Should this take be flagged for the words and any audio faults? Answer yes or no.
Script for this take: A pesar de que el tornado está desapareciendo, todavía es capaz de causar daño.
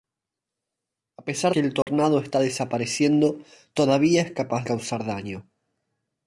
yes